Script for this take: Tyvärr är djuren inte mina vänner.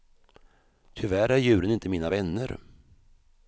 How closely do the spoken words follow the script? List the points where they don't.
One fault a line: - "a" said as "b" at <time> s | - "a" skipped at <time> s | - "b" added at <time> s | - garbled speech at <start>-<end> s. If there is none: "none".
none